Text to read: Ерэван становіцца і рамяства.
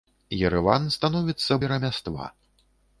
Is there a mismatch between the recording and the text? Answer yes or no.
no